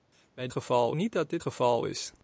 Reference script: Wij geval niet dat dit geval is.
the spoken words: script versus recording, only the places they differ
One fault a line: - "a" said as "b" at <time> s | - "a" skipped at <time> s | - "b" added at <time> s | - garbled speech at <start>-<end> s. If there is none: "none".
none